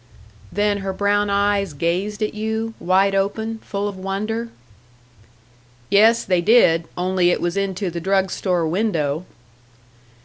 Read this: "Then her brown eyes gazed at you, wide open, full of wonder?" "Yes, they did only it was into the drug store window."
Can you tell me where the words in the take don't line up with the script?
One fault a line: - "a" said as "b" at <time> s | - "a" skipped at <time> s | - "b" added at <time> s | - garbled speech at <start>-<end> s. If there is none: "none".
none